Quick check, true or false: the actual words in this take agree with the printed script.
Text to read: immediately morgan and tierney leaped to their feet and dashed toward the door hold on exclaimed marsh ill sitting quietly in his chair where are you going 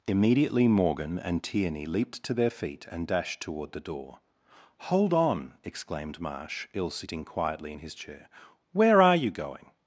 true